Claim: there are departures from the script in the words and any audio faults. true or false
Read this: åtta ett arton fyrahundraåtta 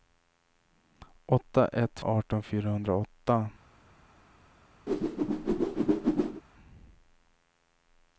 true